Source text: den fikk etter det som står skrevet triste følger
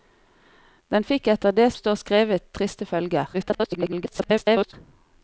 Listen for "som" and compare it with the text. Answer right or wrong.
wrong